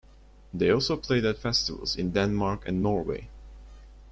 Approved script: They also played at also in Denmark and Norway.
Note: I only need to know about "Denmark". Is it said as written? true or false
true